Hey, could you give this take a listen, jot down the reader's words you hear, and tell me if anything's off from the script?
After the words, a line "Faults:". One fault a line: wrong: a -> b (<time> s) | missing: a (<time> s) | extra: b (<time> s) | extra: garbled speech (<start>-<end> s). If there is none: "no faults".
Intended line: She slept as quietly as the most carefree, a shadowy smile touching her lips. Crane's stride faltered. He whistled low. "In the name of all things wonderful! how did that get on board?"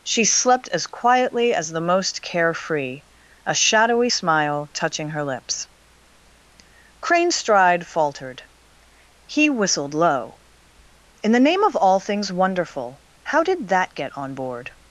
She slept as quietly as the most carefree, a shadowy smile touching her lips. Crane's stride faltered. He whistled low. "In the name of all things wonderful! how did that get on board?"
Faults:
no faults